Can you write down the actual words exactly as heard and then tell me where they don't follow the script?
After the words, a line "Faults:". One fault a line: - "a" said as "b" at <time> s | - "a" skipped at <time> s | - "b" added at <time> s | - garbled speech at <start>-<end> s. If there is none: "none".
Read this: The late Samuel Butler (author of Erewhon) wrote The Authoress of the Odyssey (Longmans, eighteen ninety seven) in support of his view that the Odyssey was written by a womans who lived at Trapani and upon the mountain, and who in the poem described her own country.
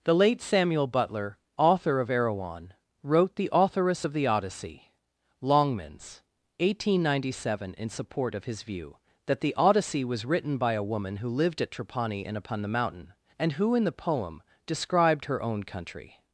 The late Samuel Butler (author of Erewhon) wrote The Authoress of the Odyssey (Longmans, eighteen ninety seven) in support of his view that the Odyssey was written by a woman who lived at Trapani and upon the mountain, and who in the poem described her own country.
Faults:
- "womans" said as "woman" at 10.9 s